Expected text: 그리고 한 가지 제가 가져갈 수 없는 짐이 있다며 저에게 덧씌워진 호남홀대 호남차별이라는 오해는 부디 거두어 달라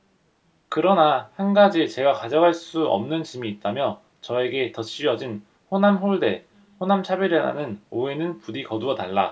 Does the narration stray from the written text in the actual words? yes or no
yes